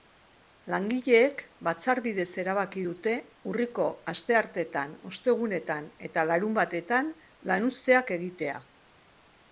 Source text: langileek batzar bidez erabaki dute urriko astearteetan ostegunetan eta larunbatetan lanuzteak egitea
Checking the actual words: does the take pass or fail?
pass